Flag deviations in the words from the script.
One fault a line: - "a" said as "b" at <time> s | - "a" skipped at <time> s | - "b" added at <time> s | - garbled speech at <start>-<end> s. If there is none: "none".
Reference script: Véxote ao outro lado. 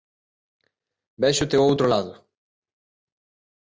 none